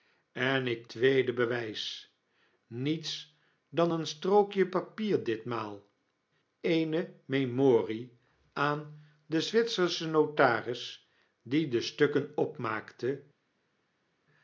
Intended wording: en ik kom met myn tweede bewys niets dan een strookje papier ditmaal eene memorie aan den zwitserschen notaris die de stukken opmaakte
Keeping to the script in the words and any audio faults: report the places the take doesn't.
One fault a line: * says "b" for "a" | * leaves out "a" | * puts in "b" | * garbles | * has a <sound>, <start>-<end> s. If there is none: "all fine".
* leaves out "kom met myn"